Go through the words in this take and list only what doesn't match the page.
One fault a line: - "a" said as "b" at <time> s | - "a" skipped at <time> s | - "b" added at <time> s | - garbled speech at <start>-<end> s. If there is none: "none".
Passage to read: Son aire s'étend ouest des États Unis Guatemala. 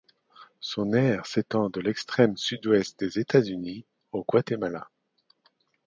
- "de l'extrême sud" added at 1.7 s
- "au" added at 4.1 s